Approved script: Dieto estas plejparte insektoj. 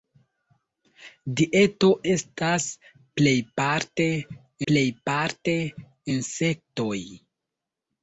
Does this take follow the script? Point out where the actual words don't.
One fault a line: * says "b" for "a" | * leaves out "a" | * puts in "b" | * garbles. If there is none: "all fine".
* puts in "plejparte"